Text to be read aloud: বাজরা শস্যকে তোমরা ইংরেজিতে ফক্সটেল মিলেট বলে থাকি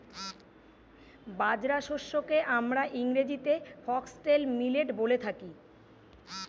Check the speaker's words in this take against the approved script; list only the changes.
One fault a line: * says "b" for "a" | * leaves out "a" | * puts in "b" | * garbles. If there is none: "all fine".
* says "আমরা" for "তোমরা"